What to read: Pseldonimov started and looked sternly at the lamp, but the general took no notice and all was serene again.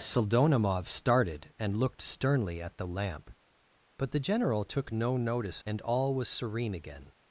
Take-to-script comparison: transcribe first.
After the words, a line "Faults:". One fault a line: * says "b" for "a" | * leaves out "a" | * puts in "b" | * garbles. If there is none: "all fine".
Pseldonimov started and looked sternly at the lamp, but the general took no notice and all was serene again.
Faults:
all fine